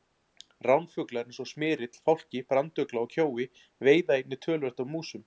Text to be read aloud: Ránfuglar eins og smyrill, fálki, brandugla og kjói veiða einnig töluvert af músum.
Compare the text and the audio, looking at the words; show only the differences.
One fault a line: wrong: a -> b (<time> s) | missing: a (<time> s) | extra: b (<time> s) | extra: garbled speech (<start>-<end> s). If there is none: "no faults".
no faults